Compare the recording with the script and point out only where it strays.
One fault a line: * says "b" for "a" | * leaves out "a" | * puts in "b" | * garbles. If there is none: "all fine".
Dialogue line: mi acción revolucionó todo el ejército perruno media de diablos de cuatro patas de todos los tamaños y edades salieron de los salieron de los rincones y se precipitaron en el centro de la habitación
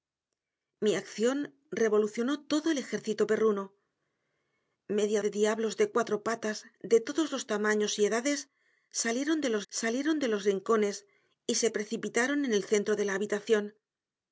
all fine